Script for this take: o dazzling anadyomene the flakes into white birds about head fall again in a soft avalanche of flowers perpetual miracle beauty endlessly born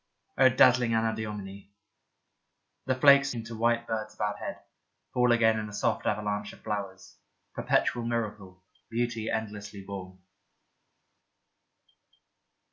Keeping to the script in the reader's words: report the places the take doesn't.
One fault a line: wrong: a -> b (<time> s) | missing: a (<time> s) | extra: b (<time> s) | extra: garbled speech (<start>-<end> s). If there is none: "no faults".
no faults